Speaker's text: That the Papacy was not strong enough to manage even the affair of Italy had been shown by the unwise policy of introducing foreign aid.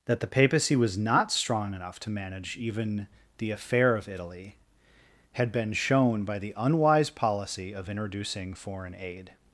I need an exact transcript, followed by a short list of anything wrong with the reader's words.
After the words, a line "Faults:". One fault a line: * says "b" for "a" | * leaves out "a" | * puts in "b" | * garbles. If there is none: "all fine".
That the Papacy was not strong enough to manage even the affair of Italy had been shown by the unwise policy of introducing foreign aid.
Faults:
all fine